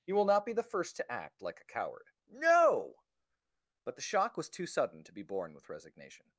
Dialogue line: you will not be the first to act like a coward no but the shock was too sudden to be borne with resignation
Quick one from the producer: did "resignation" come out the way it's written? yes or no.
yes